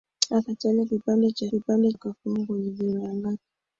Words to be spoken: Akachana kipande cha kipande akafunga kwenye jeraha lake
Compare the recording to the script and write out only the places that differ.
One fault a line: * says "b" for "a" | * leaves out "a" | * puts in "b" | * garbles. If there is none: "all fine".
all fine